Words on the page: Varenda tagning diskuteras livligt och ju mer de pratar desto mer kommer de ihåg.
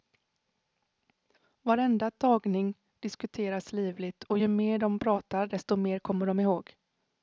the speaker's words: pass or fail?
pass